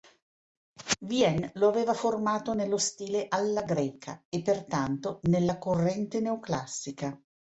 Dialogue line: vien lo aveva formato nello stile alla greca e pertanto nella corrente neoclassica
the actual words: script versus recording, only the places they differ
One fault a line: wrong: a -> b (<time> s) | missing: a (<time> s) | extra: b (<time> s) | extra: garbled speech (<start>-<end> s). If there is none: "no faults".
no faults